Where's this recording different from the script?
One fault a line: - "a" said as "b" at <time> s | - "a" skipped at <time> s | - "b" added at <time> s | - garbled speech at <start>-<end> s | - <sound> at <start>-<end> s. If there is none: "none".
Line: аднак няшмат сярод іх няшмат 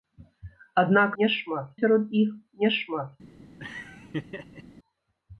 - laugh at 3.6-4.6 s